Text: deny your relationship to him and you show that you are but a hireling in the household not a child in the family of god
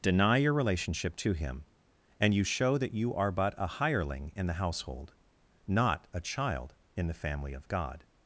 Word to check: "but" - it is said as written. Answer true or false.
true